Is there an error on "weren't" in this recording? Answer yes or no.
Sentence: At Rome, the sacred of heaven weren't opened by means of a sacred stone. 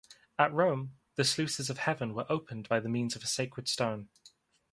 yes